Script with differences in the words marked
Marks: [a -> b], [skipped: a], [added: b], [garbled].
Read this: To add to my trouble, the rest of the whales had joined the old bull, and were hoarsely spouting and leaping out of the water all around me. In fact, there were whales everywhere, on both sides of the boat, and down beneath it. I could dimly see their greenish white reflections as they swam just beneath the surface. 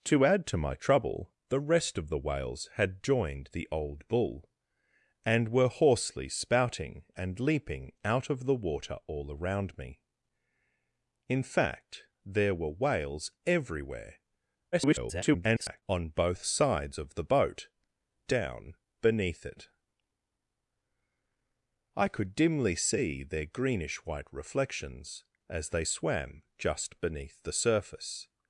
To add to my trouble, the rest of the whales had joined the old bull, and were hoarsely spouting and leaping out of the water all around me. In fact, there were whales everywhere, [garbled] on both sides of the boat, [skipped: and] down beneath it. I could dimly see their greenish white reflections as they swam just beneath the surface.